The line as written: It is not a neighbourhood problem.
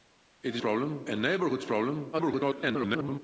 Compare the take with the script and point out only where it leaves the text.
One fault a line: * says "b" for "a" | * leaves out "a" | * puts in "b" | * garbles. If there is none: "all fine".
* says "problem" for "not"
* garbles